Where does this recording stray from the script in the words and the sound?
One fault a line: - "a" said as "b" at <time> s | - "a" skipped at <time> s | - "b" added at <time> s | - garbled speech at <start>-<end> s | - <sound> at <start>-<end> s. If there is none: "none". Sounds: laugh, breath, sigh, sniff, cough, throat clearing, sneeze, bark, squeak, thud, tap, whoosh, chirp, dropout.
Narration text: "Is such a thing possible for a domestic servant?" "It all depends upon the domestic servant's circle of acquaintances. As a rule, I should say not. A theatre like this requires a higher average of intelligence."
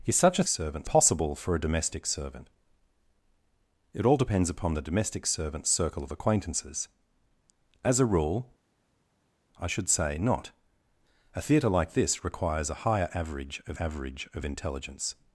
- "thing" said as "servant's" at 0.5 s
- "average of" added at 13.8 s